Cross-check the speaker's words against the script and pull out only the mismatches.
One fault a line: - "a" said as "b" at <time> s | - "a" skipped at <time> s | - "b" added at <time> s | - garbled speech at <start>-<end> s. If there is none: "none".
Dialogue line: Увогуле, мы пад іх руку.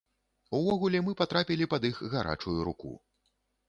- "патрапілі" added at 1.2 s
- "гарачую" added at 2.2 s